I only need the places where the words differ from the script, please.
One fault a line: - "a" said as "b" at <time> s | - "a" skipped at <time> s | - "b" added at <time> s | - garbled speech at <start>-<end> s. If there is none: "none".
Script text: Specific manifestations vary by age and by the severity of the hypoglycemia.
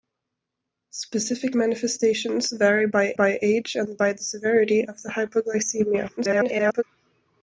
- "by" added at 3.1 s
- garbled speech at 6.2-6.8 s